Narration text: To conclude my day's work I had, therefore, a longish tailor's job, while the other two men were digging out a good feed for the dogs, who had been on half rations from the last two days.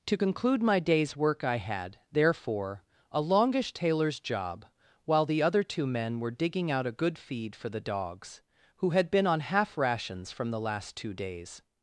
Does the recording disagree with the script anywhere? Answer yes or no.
no